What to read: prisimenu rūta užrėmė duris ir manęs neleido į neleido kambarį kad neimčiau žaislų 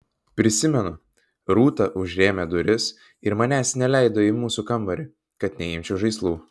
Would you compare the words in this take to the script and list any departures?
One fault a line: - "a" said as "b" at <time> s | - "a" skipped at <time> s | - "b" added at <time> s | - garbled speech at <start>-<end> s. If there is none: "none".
- "neleido" said as "mūsų" at 4.4 s